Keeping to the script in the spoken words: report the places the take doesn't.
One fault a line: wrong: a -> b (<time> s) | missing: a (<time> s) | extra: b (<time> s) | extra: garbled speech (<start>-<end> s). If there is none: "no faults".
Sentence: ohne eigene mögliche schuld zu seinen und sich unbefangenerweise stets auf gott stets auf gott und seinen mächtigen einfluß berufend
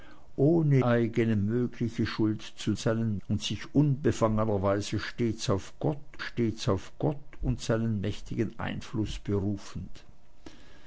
no faults